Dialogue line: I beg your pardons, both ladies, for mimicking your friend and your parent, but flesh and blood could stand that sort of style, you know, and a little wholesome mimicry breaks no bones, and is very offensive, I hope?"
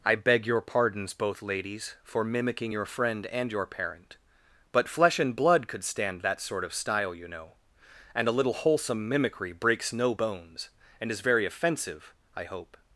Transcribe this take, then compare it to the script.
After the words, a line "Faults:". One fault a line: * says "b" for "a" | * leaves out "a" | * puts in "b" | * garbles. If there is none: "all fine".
I beg your pardons, both ladies, for mimicking your friend and your parent, but flesh and blood could stand that sort of style, you know, and a little wholesome mimicry breaks no bones, and is very offensive, I hope?"
Faults:
all fine